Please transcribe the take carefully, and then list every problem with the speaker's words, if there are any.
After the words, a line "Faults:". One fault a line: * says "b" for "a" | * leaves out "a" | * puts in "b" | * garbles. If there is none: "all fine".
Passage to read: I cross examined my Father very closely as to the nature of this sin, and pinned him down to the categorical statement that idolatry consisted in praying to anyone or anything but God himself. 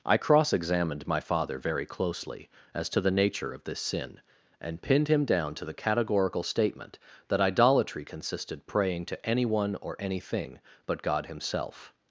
I cross examined my Father very closely as to the nature of this sin, and pinned him down to the categorical statement that idolatry consisted praying to anyone or anything but God himself.
Faults:
* leaves out "in"